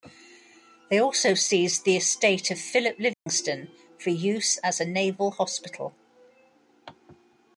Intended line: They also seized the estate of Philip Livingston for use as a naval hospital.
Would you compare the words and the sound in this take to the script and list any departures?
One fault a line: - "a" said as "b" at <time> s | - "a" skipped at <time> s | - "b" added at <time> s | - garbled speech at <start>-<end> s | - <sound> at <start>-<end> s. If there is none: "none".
- dropout at 3.1-3.3 s